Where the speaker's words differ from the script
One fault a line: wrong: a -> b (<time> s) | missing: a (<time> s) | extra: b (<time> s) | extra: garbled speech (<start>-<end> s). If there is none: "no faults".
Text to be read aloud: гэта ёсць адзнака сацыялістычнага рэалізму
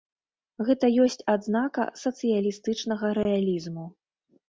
no faults